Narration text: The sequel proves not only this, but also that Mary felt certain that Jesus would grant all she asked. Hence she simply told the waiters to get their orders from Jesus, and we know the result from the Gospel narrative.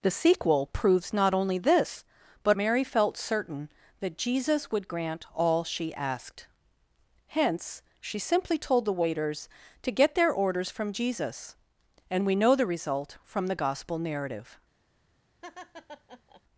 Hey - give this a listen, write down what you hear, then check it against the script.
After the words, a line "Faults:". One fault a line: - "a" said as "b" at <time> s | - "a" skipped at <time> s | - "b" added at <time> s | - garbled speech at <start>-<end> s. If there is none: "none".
The sequel proves not only this, but Mary felt certain that Jesus would grant all she asked. Hence she simply told the waiters to get their orders from Jesus, and we know the result from the Gospel narrative.
Faults:
- "also that" skipped at 2.6 s